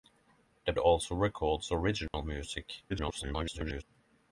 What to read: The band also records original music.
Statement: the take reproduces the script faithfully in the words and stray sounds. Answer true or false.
false